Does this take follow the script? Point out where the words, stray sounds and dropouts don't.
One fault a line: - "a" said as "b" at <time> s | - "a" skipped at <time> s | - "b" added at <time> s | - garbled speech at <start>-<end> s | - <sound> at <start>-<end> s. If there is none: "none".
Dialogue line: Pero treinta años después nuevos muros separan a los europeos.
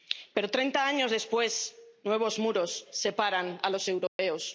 - dropout at 4.1-4.2 s